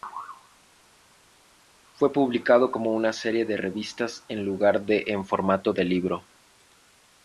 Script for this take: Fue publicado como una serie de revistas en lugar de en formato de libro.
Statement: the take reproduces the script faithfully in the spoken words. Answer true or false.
true